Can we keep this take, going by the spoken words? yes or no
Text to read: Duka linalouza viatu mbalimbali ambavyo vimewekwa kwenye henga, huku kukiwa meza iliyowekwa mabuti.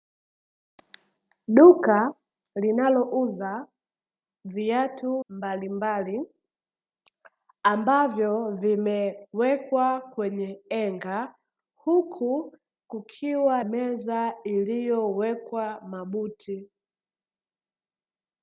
yes